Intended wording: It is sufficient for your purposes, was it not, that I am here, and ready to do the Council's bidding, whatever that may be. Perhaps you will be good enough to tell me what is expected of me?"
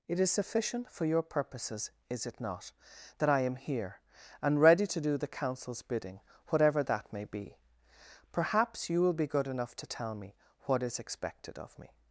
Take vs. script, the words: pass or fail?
fail